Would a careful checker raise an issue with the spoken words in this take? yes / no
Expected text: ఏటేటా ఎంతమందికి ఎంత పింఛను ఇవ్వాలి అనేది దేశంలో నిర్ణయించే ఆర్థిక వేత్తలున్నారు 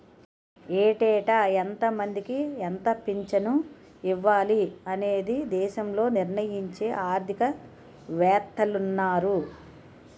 no